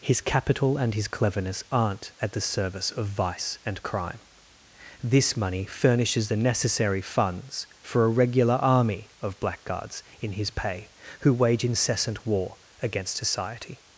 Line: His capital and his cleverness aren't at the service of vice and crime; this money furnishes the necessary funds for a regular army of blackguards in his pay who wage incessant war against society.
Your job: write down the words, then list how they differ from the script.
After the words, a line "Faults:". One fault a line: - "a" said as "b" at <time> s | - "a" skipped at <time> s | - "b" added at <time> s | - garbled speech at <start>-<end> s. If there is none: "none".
His capital and his cleverness aren't at the service of vice and crime; this money furnishes the necessary funds for a regular army of blackguards in his pay who wage incessant war against society.
Faults:
none